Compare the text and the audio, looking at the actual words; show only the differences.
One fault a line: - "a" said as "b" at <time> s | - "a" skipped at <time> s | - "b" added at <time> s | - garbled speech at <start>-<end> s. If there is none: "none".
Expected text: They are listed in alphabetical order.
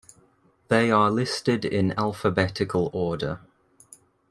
none